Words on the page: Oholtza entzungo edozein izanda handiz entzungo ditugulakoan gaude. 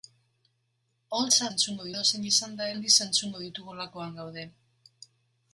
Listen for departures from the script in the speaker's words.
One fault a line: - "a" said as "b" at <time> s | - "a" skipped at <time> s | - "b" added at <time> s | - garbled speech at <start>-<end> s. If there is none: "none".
none